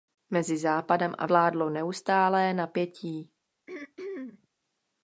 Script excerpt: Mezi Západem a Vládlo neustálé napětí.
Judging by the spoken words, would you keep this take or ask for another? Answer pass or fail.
pass